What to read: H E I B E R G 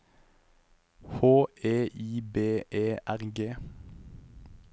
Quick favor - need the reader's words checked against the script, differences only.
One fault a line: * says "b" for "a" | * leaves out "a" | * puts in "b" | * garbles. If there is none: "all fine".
all fine